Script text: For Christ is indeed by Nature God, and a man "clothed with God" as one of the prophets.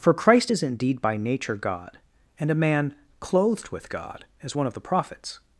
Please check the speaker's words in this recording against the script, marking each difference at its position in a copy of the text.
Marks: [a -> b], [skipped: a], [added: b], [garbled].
For Christ is indeed by Nature God, and a man "clothed with God" as one of the prophets.